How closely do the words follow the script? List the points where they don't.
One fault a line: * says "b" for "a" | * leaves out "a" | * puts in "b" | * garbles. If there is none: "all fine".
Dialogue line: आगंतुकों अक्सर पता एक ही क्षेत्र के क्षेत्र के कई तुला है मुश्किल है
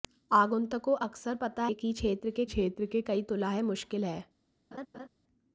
all fine